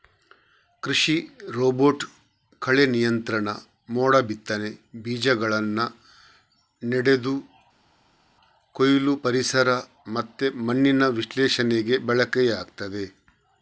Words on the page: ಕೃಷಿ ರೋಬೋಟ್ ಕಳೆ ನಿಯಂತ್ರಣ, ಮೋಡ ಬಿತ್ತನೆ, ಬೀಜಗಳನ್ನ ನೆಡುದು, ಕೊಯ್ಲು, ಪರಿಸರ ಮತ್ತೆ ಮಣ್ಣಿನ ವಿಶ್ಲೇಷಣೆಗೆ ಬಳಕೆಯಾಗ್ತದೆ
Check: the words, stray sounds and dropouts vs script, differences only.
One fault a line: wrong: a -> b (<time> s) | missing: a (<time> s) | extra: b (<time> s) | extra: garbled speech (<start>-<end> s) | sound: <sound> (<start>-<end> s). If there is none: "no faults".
no faults